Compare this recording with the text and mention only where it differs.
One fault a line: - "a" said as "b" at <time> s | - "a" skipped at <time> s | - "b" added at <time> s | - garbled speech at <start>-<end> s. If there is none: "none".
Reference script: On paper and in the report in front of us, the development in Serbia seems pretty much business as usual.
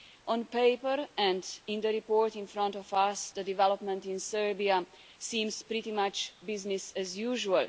none